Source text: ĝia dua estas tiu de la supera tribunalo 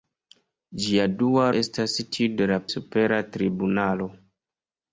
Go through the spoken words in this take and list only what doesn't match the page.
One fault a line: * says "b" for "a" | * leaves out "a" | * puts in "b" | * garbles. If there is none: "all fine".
all fine